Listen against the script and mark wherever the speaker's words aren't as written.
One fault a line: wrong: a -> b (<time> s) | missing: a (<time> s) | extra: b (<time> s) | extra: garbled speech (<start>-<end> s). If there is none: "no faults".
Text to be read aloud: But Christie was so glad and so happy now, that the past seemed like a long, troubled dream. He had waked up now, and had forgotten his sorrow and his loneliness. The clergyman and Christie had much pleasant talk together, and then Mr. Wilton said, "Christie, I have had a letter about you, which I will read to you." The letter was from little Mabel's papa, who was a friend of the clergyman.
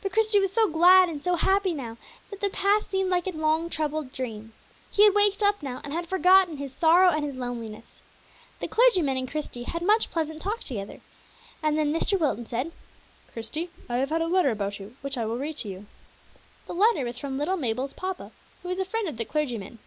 no faults